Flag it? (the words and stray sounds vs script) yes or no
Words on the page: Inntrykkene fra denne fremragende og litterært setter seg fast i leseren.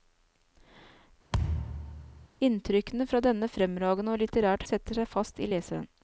yes